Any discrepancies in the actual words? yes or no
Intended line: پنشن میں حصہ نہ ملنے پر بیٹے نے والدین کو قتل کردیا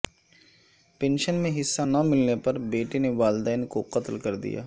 no